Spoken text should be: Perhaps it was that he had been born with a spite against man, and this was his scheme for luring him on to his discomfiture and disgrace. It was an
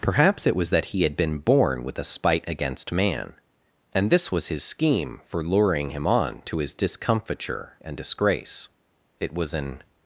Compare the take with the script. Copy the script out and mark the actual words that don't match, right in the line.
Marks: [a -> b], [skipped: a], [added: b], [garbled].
Perhaps it was that he had been born with a spite against man, and this was his scheme for luring him on to his discomfiture and disgrace. It was an